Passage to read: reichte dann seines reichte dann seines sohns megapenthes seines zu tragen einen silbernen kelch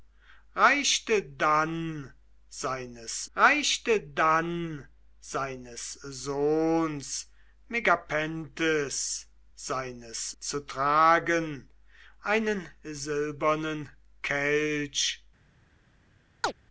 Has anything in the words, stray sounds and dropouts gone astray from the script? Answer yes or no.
yes